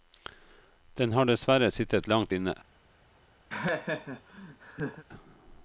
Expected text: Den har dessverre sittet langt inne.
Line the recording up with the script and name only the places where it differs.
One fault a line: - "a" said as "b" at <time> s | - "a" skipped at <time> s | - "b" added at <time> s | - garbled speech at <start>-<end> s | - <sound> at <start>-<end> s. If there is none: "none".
- laugh at 3.5-5.0 s